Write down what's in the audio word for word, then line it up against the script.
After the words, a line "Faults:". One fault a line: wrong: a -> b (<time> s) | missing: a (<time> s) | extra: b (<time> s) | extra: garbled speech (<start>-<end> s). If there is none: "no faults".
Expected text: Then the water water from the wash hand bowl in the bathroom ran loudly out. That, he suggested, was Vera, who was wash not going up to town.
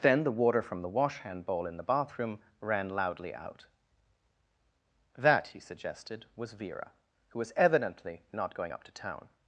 Then the water from the wash hand bowl in the bathroom ran loudly out. That, he suggested, was Vera, who was evidently not going up to town.
Faults:
missing: water (0.6 s)
wrong: wash -> evidently (7.5 s)